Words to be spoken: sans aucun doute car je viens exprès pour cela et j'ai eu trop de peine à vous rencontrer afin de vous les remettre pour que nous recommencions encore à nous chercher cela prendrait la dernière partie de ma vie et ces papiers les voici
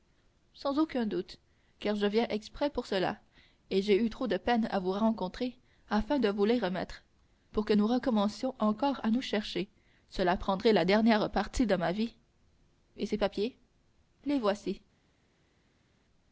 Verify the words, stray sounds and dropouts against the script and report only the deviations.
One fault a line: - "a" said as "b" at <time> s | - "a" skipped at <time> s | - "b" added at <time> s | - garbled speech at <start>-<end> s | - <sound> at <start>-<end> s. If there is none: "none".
none